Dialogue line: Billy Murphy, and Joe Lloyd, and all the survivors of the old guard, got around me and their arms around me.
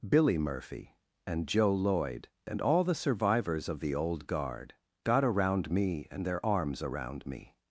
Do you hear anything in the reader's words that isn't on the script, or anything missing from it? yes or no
no